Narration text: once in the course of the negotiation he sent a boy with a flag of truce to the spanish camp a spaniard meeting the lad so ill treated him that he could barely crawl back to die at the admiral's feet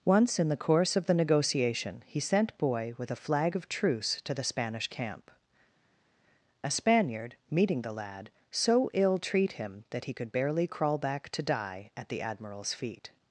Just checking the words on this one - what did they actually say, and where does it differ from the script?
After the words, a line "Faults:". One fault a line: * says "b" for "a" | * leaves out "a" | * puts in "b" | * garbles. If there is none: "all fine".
once in the course of the negotiation he sent boy with a flag of truce to the spanish camp a spaniard meeting the lad so ill treat him that he could barely crawl back to die at the admiral's feet
Faults:
* leaves out "a"
* says "treat" for "treated"